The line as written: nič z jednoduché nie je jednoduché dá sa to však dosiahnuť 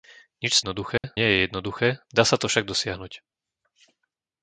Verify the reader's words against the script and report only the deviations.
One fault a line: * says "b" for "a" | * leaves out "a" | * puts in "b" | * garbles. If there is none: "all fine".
all fine